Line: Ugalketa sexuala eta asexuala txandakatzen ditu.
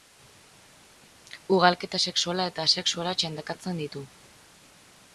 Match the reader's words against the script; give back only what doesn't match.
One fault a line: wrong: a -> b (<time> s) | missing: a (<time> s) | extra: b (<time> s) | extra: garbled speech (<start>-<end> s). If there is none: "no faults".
no faults